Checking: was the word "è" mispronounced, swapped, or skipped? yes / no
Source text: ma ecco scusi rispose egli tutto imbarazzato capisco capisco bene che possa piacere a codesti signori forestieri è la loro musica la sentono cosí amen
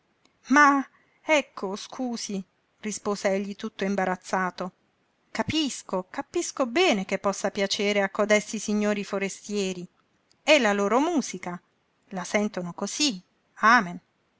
no